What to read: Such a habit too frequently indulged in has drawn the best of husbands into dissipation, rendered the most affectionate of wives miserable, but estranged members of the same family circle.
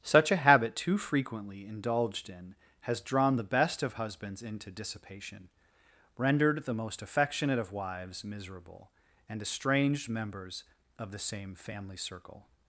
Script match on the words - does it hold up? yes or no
no